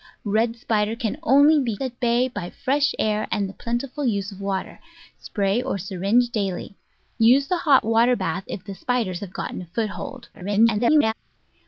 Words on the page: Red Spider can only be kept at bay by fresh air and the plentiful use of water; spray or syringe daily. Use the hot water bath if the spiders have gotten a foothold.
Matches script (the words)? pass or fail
fail